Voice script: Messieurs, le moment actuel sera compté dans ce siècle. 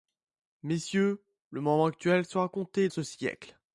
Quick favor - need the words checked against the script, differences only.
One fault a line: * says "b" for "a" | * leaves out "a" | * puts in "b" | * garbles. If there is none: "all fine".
* leaves out "dans"